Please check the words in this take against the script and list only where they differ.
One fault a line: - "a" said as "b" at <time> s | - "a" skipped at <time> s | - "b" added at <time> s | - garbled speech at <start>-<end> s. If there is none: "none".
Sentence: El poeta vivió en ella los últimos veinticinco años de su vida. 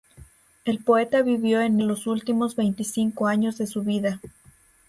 - "ella" skipped at 1.8 s